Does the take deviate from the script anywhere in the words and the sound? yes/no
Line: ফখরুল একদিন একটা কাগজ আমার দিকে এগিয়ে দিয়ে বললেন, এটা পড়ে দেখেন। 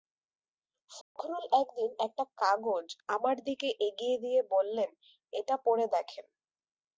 yes